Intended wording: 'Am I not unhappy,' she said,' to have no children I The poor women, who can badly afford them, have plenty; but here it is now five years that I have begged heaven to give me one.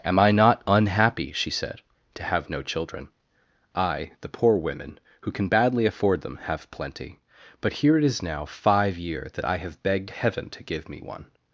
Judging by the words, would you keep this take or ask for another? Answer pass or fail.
fail